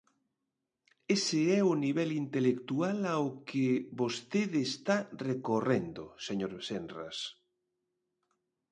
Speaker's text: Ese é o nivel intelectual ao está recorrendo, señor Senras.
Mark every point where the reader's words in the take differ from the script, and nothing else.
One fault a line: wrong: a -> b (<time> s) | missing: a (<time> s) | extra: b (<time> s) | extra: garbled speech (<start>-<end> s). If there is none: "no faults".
extra: que vostede (3.5 s)